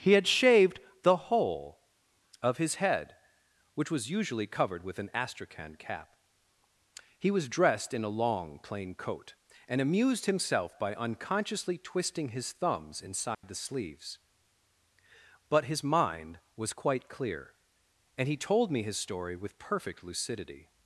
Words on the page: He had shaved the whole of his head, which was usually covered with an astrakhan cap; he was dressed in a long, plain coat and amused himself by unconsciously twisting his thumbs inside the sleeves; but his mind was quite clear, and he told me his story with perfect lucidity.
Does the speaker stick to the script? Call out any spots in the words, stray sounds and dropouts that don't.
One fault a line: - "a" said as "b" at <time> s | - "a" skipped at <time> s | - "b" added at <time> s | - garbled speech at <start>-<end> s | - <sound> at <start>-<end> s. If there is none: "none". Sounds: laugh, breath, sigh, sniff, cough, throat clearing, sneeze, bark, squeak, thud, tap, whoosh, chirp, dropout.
- dropout at 13.3-13.4 s